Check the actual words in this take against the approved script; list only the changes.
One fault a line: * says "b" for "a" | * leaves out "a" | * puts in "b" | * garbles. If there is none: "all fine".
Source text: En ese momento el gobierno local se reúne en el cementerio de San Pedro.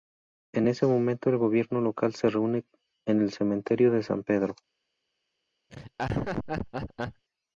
all fine